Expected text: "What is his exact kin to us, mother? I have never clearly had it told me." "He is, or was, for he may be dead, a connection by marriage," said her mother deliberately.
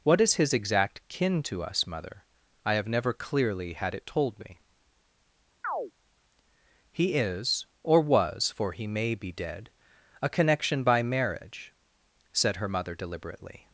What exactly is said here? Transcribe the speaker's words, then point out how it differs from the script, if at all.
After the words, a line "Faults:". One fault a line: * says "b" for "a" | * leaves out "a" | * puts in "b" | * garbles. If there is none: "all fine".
"What is his exact kin to us, mother? I have never clearly had it told me." "He is, or was, for he may be dead, a connection by marriage," said her mother deliberately.
Faults:
all fine